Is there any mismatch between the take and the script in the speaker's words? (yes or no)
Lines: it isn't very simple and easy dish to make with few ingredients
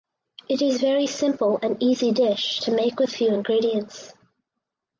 yes